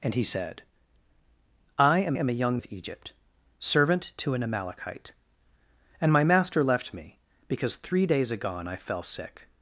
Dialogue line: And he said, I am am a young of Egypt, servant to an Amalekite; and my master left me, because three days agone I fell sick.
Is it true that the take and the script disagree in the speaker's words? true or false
false